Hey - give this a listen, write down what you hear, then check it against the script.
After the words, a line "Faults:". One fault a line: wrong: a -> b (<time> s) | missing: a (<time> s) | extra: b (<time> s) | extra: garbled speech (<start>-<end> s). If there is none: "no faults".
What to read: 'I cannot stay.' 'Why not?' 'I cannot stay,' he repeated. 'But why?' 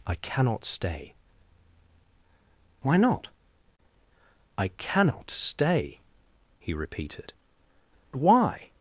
'I cannot stay.' 'Why not?' 'I cannot stay,' he repeated. 'Why?'
Faults:
missing: But (7.3 s)